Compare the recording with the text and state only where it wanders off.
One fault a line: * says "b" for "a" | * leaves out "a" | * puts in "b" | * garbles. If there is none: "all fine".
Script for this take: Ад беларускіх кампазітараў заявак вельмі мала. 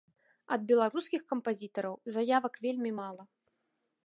all fine